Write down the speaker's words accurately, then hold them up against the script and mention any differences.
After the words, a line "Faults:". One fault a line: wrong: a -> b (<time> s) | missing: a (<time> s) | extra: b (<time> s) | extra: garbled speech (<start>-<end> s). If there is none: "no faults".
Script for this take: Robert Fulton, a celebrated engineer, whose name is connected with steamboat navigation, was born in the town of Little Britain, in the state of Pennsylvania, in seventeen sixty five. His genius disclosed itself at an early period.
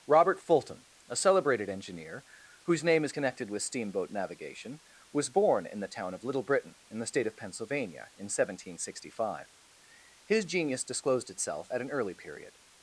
Robert Fulton, a celebrated engineer, whose name is connected with steamboat navigation, was born in the town of Little Britain, in the state of Pennsylvania, in seventeen sixty five. His genius disclosed itself at an early period.
Faults:
no faults